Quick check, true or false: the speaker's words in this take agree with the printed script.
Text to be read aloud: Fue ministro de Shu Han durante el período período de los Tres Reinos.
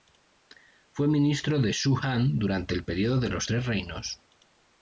false